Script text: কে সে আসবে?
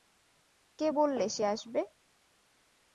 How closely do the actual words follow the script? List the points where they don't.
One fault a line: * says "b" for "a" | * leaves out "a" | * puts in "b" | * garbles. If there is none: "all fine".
* puts in "বললে"